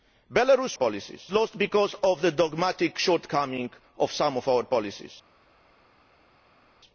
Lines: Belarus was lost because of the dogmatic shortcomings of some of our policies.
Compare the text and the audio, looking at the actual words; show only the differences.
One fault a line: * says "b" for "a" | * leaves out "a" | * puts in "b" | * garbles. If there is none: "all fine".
* says "policies" for "was"